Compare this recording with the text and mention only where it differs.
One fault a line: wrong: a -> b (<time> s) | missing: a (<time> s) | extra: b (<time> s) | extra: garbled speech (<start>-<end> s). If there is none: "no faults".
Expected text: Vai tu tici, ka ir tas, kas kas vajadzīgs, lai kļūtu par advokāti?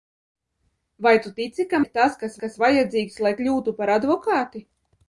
no faults